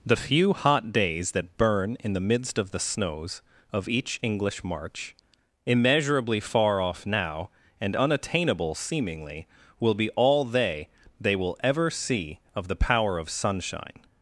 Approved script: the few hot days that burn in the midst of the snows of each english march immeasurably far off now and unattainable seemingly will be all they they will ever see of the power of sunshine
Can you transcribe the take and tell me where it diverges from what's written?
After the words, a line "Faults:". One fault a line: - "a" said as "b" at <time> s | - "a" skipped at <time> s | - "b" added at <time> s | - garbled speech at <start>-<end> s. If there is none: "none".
the few hot days that burn in the midst of the snows of each english march immeasurably far off now and unattainable seemingly will be all they they will ever see of the power of sunshine
Faults:
none